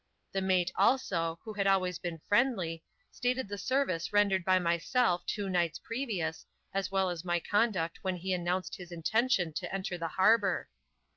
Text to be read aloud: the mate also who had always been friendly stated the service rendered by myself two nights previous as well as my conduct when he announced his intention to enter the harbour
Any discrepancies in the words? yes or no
no